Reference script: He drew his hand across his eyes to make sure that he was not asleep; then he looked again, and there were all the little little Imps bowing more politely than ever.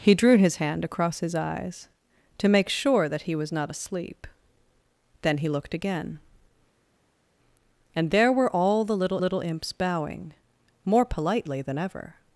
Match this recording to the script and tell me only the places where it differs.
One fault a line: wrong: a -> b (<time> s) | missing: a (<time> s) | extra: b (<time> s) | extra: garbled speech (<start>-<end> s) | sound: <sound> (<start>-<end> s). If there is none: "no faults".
no faults